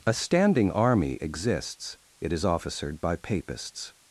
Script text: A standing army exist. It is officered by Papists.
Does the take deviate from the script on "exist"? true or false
true